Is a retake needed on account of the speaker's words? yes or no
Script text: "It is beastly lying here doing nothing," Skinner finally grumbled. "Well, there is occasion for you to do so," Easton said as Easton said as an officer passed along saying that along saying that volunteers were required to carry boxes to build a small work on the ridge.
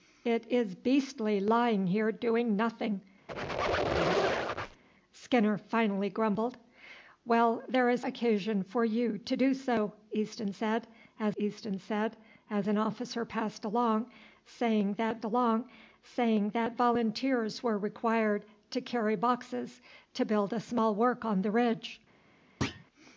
no